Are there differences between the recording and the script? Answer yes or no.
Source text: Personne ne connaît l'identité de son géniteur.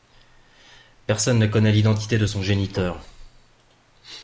no